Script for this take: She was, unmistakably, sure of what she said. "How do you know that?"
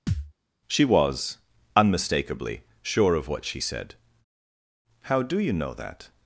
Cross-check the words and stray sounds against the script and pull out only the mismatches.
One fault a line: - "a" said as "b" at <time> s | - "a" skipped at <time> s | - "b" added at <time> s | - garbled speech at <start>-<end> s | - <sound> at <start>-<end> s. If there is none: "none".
- thud at 0.1-0.3 s